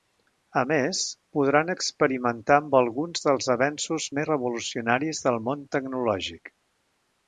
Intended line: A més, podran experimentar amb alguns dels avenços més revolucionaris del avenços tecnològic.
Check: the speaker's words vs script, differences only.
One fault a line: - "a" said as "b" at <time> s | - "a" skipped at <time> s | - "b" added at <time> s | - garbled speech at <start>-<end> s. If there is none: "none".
- "avenços" said as "món" at 5.5 s